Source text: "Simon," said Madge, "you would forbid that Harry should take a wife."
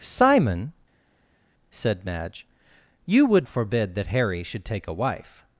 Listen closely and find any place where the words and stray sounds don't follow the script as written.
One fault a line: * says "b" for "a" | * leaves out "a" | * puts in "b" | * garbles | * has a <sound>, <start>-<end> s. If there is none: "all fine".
all fine